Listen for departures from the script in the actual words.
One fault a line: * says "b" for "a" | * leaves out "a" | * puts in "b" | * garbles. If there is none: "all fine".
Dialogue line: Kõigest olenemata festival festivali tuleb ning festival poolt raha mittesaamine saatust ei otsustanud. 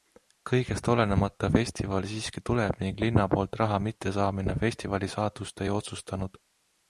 * says "siiski" for "festivali"
* says "linna" for "festival"
* puts in "festivali"